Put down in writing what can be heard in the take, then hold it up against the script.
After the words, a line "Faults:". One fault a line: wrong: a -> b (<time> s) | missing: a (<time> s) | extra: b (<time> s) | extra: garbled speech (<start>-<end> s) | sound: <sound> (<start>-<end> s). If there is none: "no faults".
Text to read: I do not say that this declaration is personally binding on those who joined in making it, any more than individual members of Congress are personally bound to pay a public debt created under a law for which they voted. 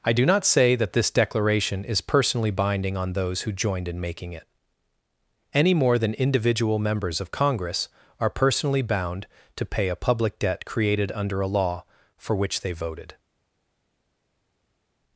I do not say that this declaration is personally binding on those who joined in making it, any more than individual members of Congress are personally bound to pay a public debt created under a law for which they voted.
Faults:
no faults